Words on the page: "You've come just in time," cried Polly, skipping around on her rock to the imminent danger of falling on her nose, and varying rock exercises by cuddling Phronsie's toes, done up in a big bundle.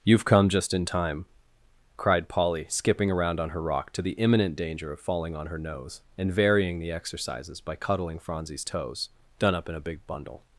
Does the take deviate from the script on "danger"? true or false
false